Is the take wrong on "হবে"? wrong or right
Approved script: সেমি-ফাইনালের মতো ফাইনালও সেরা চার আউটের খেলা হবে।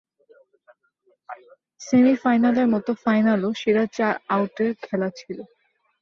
wrong